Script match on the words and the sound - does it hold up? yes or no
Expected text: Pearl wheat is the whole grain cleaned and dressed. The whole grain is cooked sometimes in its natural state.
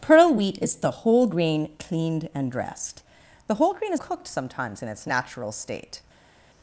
yes